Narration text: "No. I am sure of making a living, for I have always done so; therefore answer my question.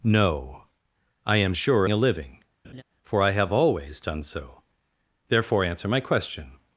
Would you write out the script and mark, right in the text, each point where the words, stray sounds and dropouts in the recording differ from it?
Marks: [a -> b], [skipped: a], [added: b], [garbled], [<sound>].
"No. I am sure [skipped: of making] a living, [laugh] for I have always done so; therefore answer my question.